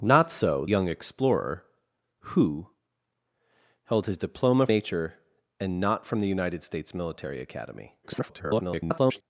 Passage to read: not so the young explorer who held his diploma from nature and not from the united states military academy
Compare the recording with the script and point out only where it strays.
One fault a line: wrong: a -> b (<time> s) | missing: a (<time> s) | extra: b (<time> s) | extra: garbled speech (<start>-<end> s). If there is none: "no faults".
missing: the (0.7 s)
missing: from (4.7 s)
extra: garbled speech (8.0-9.2 s)